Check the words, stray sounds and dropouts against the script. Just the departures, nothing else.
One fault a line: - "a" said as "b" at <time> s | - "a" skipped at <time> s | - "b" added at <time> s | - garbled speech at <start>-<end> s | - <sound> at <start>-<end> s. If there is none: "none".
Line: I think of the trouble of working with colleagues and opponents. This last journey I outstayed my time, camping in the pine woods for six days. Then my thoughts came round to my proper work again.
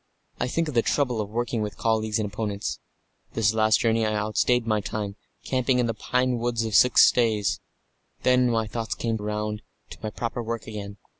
none